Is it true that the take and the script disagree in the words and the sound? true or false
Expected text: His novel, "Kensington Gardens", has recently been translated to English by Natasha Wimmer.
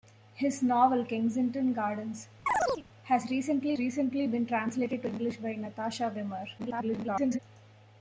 true